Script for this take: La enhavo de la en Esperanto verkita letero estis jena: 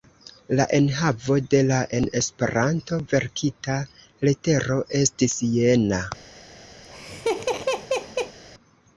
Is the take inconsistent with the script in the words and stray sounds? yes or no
yes